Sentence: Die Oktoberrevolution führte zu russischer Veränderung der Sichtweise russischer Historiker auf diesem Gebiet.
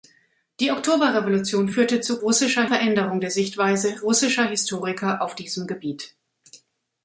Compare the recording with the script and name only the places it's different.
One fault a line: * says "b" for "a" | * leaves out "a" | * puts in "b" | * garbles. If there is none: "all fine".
all fine